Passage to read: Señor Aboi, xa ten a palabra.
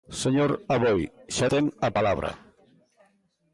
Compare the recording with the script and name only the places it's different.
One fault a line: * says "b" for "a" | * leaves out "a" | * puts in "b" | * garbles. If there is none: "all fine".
all fine